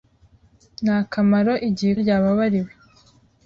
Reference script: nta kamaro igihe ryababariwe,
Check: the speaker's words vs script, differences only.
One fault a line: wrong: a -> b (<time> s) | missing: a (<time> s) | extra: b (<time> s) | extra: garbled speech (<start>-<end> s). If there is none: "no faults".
no faults